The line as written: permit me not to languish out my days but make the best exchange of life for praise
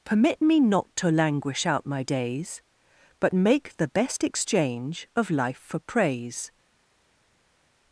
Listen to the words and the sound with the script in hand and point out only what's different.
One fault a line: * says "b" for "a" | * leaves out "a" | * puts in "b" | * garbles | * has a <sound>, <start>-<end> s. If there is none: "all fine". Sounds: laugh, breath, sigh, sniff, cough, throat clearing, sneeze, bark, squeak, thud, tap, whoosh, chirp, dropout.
all fine